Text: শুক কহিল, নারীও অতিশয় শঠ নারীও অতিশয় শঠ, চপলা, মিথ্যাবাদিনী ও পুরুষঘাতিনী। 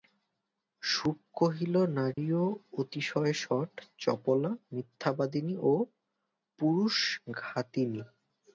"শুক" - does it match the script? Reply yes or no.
yes